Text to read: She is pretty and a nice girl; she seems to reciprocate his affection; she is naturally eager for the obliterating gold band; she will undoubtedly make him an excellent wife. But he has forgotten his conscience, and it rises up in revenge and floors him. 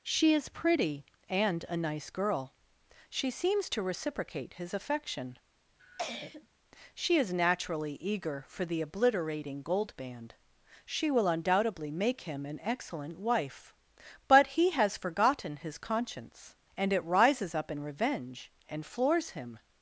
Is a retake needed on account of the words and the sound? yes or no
yes